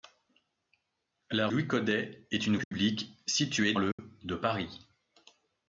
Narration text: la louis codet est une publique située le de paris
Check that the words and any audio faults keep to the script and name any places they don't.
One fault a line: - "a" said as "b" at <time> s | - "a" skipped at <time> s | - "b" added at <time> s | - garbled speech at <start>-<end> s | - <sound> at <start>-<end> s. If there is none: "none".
- dropout at 2.6-2.7 s
- dropout at 3.9-4.0 s